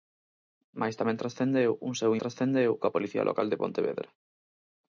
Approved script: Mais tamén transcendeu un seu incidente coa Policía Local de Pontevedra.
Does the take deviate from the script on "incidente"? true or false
true